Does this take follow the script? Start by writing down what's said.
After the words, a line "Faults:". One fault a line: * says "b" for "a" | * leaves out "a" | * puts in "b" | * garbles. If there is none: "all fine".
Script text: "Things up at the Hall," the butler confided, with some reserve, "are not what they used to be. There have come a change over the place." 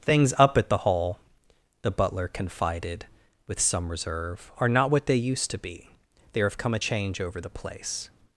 "Things up at the Hall," the butler confided, with some reserve, "are not what they used to be. There have come a change over the place."
Faults:
all fine